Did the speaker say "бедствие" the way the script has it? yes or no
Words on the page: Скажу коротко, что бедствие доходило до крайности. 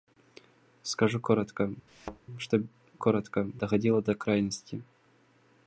no